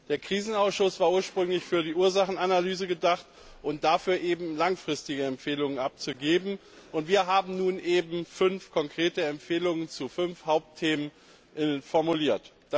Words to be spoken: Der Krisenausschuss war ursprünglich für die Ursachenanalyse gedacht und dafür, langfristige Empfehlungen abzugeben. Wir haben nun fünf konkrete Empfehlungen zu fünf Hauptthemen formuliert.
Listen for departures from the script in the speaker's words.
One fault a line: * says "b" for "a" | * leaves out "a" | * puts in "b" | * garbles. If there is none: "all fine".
all fine